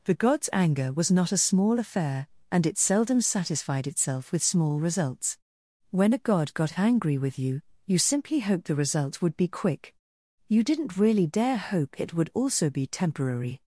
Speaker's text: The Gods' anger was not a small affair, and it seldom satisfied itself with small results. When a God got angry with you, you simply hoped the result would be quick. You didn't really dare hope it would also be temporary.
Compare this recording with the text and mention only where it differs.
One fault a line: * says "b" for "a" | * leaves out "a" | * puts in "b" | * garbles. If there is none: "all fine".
all fine